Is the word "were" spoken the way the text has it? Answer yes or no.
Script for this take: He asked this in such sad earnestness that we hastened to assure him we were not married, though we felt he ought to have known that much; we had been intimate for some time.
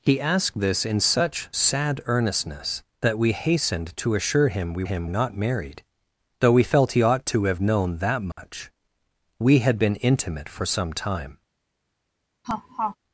no